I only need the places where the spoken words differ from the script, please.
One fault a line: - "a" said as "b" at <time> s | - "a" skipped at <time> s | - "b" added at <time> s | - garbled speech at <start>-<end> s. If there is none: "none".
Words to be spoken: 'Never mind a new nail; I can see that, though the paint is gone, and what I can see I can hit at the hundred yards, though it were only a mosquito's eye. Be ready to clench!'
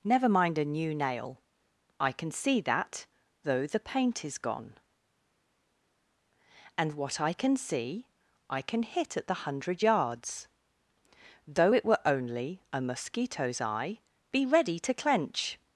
none